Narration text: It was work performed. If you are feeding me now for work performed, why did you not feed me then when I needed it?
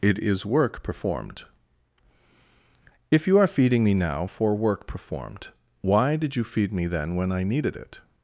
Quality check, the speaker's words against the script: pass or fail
fail